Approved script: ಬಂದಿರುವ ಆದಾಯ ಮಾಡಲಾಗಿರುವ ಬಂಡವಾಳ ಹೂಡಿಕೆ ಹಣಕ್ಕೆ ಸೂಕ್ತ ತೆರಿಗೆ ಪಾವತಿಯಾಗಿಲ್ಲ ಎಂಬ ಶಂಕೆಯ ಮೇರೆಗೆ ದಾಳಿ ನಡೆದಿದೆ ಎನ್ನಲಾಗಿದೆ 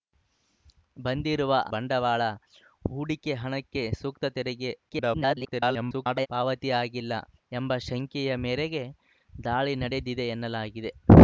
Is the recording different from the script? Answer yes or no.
yes